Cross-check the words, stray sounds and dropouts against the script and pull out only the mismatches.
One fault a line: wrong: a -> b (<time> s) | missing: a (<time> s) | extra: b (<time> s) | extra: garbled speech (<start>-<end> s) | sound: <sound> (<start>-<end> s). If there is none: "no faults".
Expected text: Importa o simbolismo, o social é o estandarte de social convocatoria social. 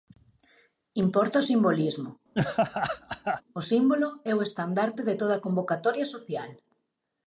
sound: laugh (2.3-3.4 s)
wrong: social -> símbolo (3.7 s)
wrong: social -> toda (5.2 s)